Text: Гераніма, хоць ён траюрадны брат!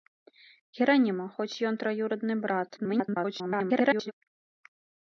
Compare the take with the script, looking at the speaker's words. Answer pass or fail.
fail